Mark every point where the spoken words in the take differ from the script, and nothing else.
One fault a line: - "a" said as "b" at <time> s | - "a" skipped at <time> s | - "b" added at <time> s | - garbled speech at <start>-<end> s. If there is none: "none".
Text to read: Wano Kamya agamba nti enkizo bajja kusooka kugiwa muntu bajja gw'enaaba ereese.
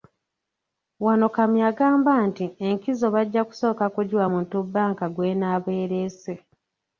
- "bajja" said as "bbanka" at 4.6 s